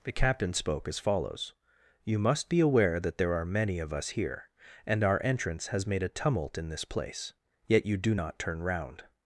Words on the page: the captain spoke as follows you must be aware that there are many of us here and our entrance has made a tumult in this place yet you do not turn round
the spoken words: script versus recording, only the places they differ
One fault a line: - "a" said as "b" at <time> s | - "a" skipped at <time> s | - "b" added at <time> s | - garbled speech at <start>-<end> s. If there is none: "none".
none